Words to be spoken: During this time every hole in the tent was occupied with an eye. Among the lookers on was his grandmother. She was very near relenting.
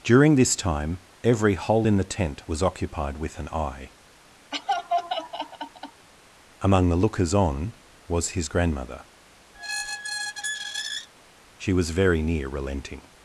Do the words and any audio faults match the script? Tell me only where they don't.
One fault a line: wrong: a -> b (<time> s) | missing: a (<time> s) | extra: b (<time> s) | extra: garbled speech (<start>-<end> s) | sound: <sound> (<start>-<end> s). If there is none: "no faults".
sound: laugh (4.5-6.1 s)
sound: squeak (9.5-11.1 s)